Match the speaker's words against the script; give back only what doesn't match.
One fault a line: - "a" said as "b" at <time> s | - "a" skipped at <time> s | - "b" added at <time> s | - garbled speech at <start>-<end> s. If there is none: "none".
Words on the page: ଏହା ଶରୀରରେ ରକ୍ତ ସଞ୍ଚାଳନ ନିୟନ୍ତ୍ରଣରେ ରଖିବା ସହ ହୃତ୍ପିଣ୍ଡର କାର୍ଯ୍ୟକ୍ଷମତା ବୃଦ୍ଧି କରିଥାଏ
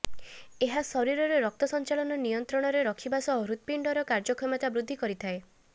none